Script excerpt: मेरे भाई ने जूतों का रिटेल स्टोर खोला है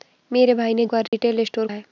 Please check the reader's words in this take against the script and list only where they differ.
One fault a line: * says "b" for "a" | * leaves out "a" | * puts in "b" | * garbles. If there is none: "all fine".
* leaves out "जूतों"
* leaves out "खोला"